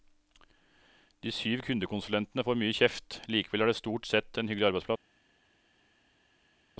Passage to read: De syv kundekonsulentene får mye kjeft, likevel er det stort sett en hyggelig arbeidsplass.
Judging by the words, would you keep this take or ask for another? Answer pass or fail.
pass